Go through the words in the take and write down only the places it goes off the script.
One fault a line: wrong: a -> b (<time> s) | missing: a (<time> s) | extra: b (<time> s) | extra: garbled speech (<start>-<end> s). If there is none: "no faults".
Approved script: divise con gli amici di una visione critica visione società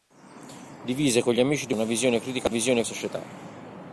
no faults